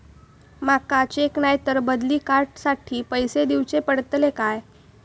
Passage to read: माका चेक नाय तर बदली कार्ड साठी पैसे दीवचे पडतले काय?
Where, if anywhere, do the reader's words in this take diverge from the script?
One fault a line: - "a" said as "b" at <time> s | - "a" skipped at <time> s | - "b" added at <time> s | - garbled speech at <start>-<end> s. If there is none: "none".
none